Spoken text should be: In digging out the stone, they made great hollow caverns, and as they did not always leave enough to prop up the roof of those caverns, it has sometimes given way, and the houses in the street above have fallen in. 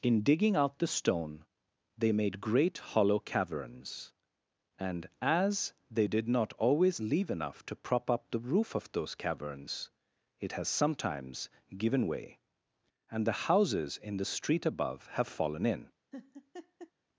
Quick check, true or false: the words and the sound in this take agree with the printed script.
false